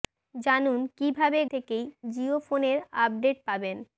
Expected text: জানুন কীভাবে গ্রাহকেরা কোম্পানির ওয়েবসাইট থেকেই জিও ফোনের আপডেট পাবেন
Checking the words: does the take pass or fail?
fail